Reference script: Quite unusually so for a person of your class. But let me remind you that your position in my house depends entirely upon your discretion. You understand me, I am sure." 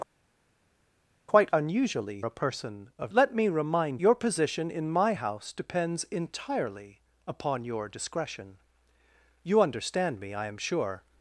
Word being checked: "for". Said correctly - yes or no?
no